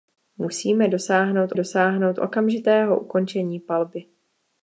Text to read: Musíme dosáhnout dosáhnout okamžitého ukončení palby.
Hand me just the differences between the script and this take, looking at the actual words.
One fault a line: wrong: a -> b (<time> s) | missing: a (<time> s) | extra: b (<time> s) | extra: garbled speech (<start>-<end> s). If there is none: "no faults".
no faults